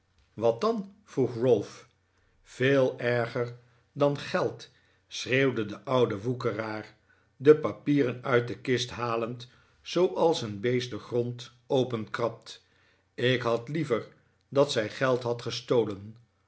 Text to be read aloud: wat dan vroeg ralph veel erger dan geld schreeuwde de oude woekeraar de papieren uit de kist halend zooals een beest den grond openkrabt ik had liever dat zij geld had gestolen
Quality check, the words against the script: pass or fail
pass